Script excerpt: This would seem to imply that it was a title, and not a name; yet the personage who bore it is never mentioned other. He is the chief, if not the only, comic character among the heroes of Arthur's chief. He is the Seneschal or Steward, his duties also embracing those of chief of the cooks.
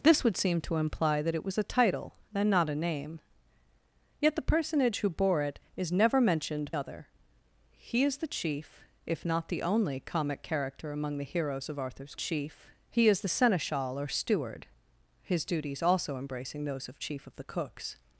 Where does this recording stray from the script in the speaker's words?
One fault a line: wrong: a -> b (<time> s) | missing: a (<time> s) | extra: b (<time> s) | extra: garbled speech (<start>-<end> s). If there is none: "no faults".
no faults